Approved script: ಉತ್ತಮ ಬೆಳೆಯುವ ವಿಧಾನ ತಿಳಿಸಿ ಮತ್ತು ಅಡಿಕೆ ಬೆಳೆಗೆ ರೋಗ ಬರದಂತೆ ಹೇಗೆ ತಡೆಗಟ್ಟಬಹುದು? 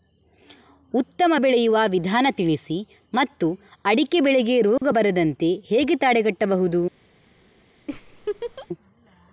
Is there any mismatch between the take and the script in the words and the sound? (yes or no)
yes